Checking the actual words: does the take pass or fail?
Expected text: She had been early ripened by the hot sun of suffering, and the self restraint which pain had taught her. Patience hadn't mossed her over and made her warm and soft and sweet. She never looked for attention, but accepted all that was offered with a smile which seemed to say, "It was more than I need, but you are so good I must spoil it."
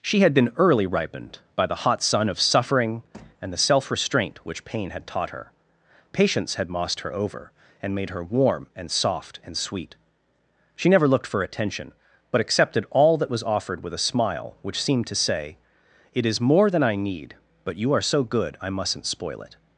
fail